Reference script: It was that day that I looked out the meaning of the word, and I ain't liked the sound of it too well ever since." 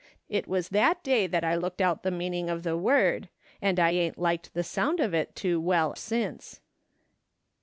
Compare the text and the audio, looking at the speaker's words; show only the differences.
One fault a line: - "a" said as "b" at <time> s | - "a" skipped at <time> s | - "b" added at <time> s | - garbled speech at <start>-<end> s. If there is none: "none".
- "ever" skipped at 5.9 s